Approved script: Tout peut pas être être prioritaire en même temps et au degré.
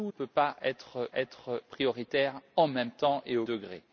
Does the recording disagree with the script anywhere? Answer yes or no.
no